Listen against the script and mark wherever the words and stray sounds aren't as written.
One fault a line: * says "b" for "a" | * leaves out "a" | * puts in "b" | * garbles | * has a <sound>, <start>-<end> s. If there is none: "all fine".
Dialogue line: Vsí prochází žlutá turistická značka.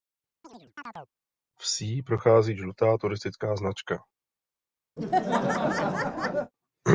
* has a chirp, 0.4-1.1 s
* has a laugh, 5.0-6.5 s